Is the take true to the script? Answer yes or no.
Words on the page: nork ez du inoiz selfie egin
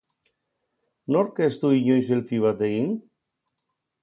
no